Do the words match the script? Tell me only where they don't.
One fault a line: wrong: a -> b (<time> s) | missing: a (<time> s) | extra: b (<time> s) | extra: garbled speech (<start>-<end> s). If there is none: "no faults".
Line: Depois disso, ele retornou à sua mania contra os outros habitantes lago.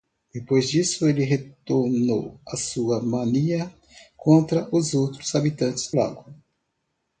no faults